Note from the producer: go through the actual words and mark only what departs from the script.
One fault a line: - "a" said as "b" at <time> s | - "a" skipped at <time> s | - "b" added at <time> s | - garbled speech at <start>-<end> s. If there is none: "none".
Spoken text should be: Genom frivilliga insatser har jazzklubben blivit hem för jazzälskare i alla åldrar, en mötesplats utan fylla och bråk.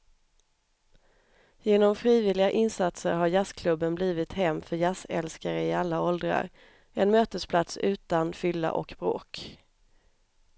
none